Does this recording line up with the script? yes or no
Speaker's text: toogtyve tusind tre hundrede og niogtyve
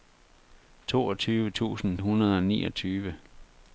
no